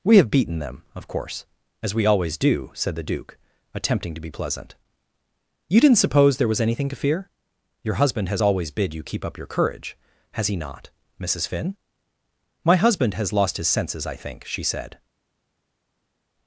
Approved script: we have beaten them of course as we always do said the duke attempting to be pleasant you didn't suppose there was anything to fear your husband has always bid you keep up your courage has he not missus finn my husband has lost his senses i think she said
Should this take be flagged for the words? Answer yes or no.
no